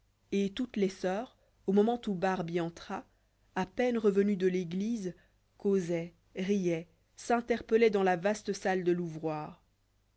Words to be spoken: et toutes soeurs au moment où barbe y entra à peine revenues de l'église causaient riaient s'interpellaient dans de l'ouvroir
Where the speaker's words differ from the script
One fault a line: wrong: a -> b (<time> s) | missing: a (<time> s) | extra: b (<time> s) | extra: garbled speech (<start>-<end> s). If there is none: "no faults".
extra: les (0.8 s)
extra: la vaste salle (8.0 s)